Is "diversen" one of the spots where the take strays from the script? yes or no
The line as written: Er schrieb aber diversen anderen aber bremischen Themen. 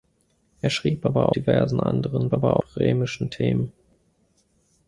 no